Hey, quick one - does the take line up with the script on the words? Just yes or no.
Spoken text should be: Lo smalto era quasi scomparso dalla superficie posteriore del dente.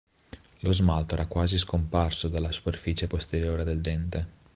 yes